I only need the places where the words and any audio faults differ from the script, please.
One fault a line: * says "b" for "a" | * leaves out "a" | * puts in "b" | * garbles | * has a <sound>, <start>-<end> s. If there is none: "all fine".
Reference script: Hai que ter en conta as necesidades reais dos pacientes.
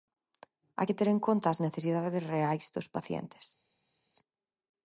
all fine